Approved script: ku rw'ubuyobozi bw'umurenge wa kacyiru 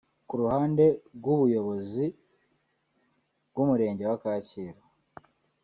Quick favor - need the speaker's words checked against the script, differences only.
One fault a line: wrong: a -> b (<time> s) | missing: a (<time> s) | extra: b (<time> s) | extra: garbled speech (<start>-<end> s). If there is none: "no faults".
extra: ruhande (0.4 s)